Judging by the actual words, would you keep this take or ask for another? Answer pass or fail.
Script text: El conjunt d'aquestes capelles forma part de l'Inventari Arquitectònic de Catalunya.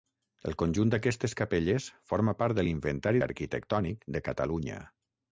pass